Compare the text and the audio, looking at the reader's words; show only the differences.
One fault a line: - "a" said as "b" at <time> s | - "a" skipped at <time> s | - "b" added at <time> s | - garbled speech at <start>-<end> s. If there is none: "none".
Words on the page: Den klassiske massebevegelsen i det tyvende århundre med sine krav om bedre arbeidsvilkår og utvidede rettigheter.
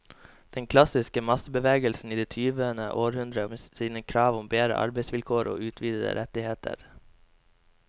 none